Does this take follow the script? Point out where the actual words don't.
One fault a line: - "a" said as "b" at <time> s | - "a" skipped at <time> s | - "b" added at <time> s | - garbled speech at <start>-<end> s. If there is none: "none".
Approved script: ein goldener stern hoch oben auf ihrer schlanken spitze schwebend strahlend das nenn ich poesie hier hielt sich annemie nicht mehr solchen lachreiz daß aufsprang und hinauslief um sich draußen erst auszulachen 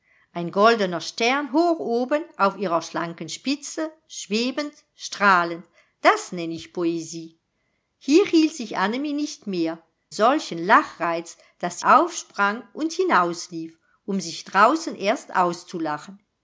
none